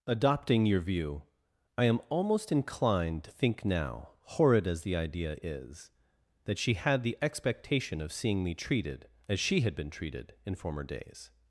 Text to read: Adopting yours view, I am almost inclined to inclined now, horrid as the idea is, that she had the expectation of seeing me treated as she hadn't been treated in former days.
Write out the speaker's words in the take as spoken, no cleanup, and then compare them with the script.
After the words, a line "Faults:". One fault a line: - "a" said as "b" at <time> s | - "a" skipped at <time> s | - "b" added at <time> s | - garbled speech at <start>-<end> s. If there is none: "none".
Adopting your view, I am almost inclined to think now, horrid as the idea is, that she had the expectation of seeing me treated as she had been treated in former days.
Faults:
- "yours" said as "your" at 0.7 s
- "inclined" said as "think" at 3.3 s
- "hadn't" said as "had" at 9.6 s